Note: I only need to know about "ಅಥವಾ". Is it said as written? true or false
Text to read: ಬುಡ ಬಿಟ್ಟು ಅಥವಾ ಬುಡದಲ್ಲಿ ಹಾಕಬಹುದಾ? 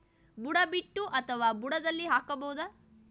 true